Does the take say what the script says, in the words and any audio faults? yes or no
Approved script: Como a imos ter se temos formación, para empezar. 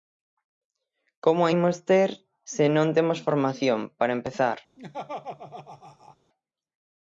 no